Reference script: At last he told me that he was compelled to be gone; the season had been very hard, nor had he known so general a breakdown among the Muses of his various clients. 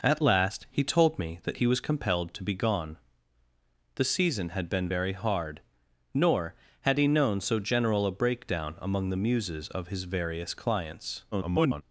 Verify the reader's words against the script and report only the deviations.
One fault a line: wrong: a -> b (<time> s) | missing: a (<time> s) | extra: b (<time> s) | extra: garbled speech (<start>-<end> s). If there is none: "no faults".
extra: garbled speech (11.3-11.8 s)